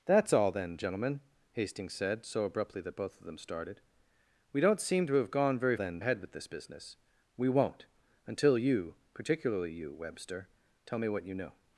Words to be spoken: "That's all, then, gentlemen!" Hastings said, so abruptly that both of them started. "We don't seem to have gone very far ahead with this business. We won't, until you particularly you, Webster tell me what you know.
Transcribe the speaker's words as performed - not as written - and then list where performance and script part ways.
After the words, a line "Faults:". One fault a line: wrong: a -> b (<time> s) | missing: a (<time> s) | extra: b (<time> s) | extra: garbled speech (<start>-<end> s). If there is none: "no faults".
"That's all, then, gentlemen!" Hastings said, so abruptly that both of them started. "We don't seem to have gone very then ahead with this business. We won't, until you particularly you, Webster tell me what you know.
Faults:
wrong: far -> then (5.7 s)